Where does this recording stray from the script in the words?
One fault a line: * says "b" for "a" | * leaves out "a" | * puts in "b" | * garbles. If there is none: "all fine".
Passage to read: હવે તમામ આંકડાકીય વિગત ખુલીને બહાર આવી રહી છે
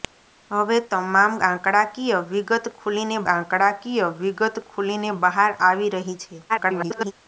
* puts in "આંકડાકીય વિગત ખુલીને"
* garbles